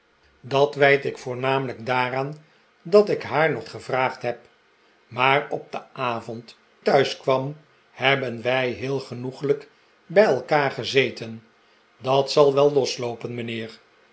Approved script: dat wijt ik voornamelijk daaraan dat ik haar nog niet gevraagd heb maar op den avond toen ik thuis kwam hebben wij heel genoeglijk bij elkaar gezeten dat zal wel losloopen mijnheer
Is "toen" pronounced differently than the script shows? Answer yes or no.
yes